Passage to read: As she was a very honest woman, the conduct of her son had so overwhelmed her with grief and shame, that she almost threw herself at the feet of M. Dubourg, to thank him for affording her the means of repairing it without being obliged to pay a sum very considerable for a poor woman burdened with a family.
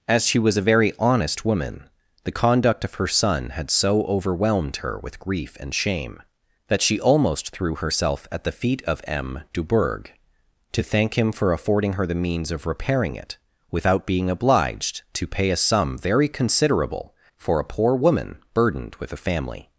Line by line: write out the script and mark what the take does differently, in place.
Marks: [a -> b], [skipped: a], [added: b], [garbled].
As she was a very honest woman, the conduct of her son had so overwhelmed her with grief and shame, that she almost threw herself at the feet of M. Dubourg, to thank him for affording her the means of repairing it without being obliged to pay a sum very considerable for a poor woman burdened with a family.